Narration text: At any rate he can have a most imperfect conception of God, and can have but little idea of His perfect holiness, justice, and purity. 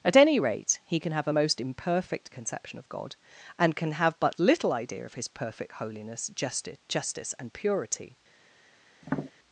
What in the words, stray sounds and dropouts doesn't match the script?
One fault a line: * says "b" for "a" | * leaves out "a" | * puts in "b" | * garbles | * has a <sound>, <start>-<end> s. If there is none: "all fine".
* puts in "justice"
* has a tap, 9.0-9.3 s